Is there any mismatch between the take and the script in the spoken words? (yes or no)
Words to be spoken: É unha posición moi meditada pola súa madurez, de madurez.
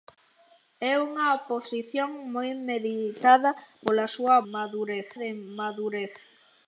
no